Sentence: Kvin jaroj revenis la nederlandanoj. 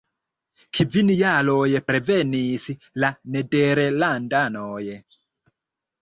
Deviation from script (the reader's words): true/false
false